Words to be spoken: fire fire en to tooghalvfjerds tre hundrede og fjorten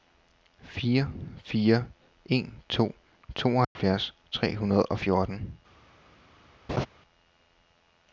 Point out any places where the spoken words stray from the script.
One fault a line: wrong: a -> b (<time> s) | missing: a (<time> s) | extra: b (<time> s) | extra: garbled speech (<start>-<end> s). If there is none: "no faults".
no faults